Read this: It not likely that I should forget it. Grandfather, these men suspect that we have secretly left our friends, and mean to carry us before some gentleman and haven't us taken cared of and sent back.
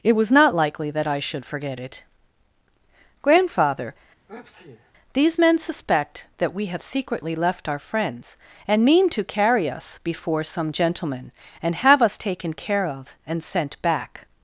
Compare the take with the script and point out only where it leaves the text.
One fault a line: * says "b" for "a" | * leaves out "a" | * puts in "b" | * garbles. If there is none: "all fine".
* puts in "was"
* says "have" for "haven't"
* says "care" for "cared"